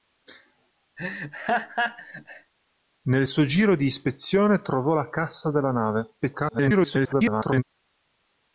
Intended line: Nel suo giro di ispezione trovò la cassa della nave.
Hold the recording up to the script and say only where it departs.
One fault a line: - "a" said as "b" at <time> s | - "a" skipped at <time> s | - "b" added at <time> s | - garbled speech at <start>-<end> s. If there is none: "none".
- garbled speech at 6.2-7.6 s